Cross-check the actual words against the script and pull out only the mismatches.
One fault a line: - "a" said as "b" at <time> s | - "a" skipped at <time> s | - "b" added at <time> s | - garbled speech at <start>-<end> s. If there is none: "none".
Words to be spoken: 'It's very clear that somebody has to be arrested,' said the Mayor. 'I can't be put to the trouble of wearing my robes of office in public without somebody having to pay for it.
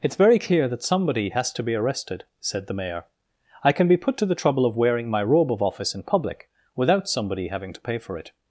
- "can't" said as "can" at 3.7 s
- "robes" said as "robe" at 5.2 s